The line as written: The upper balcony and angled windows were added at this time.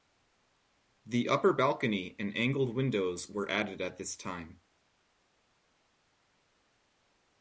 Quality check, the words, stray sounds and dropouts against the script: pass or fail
pass